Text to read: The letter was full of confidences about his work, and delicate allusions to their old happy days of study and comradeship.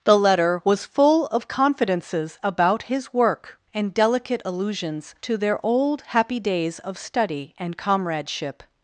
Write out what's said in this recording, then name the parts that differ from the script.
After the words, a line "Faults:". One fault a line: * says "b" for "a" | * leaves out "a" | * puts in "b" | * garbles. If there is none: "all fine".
The letter was full of confidences about his work, and delicate allusions to their old happy days of study and comradeship.
Faults:
all fine